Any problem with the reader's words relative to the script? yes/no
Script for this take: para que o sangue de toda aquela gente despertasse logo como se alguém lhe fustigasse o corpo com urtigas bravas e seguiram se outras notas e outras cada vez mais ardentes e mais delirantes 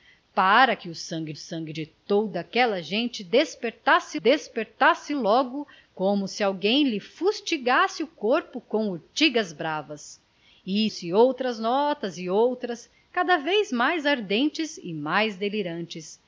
yes